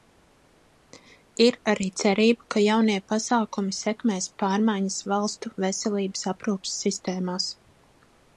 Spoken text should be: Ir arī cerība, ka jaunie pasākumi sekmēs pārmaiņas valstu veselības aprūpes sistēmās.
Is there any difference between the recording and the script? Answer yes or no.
no